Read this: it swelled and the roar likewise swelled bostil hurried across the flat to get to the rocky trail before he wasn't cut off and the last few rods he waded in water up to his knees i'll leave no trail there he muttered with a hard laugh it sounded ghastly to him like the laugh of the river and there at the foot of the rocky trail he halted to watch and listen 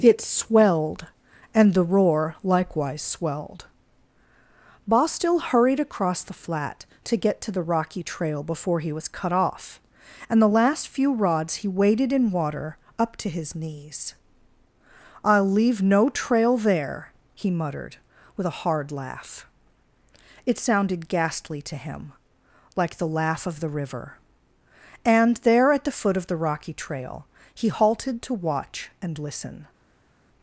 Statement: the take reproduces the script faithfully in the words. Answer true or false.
false